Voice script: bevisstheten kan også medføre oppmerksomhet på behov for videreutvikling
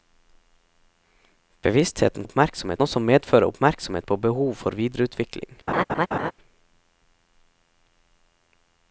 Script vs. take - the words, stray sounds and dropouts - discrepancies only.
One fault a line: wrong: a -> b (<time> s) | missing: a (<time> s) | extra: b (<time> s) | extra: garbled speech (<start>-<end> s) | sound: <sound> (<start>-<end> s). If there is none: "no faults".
wrong: kan -> oppmerksomhet (2.2 s)
sound: laugh (5.7-6.3 s)